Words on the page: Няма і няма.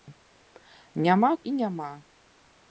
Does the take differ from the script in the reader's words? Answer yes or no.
no